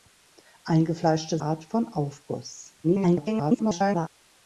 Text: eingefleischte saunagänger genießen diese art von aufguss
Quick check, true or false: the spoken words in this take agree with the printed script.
false